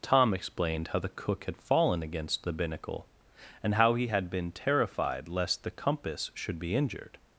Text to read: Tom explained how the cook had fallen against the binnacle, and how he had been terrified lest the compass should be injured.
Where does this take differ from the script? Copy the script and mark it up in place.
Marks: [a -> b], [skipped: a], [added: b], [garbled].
Tom explained how the cook had fallen against the binnacle, and how he had been terrified lest the compass should be injured.